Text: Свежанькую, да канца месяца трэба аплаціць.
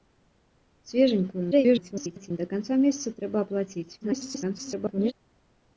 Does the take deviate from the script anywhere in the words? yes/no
yes